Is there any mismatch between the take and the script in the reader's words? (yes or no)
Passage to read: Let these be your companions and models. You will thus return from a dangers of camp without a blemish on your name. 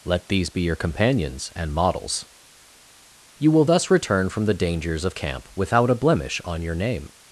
yes